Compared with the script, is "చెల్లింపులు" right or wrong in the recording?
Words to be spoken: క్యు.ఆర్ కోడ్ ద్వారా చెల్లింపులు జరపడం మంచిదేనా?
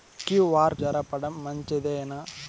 wrong